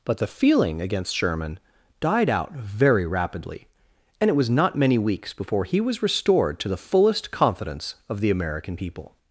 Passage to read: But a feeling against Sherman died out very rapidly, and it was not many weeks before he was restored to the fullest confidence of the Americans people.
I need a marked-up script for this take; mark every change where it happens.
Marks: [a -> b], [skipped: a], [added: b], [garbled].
But [a -> the] feeling against Sherman died out very rapidly, and it was not many weeks before he was restored to the fullest confidence of the [Americans -> American] people.